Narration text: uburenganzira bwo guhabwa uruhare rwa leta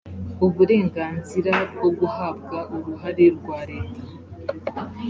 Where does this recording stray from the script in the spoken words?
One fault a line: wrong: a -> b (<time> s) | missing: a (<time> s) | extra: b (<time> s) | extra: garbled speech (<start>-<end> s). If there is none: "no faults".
no faults